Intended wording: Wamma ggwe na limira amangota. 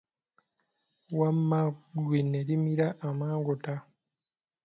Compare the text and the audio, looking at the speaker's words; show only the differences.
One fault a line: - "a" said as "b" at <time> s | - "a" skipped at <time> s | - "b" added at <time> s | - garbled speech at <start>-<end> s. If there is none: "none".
- "na" said as "ne" at 2.3 s